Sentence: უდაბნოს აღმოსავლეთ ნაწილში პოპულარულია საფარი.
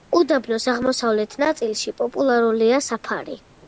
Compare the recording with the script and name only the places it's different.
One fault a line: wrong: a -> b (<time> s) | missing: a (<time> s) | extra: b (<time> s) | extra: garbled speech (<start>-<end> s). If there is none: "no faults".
no faults